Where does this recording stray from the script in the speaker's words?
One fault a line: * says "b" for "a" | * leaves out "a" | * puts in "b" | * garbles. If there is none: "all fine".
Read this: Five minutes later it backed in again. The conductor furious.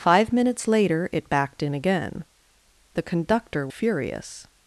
all fine